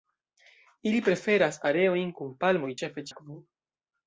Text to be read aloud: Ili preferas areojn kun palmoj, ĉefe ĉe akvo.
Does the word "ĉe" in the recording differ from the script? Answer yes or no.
yes